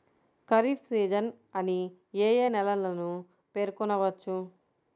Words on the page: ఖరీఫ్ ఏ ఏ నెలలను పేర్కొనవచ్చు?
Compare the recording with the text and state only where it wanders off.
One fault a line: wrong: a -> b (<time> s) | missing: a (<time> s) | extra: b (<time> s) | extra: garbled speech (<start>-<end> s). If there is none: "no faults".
extra: సీజన్ అని (0.9 s)